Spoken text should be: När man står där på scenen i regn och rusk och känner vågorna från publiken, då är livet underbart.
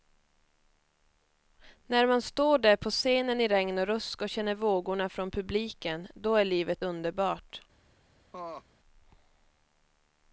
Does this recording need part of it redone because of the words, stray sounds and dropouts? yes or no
yes